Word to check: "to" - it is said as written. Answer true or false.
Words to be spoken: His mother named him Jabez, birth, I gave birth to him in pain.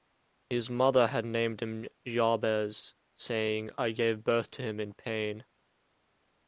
true